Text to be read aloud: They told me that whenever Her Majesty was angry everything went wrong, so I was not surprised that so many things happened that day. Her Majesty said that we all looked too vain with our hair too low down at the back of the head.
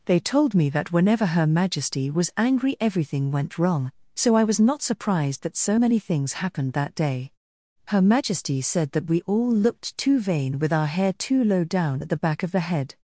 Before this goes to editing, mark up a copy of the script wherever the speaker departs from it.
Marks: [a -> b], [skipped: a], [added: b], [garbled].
They told me that whenever Her Majesty was angry everything went wrong, so I was not surprised that so many things happened that day. Her Majesty said that we all looked too vain with our hair too low down at the back of the head.